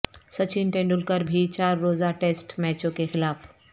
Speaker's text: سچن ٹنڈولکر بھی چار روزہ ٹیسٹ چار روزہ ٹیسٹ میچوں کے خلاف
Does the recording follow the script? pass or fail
fail